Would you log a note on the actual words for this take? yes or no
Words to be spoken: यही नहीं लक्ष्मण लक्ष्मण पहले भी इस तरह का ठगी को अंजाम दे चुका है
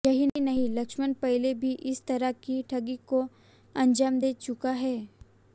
yes